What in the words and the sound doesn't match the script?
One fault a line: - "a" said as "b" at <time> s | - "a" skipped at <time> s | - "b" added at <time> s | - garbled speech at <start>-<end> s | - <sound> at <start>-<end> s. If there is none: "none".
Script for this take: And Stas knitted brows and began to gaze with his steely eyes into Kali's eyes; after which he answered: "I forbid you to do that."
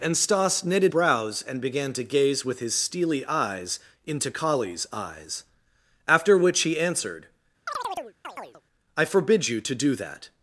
- chirp at 7.7-8.6 s